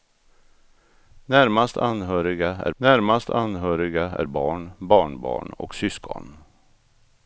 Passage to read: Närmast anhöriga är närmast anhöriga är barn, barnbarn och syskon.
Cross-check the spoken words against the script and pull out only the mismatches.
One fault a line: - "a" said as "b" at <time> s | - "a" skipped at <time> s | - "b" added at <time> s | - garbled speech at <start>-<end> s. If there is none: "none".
none